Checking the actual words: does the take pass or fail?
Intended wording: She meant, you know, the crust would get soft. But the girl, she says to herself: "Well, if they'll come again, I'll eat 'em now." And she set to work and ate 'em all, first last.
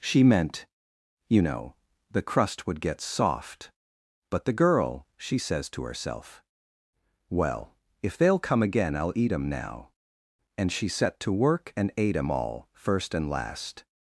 fail